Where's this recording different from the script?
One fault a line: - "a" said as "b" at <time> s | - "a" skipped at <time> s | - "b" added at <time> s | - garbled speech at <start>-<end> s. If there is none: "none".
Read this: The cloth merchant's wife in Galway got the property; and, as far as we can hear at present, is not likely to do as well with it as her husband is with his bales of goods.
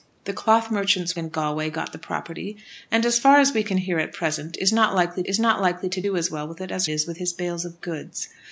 - "wife" skipped at 1.1 s
- "is not likely" added at 5.3 s
- "her husband" skipped at 6.9 s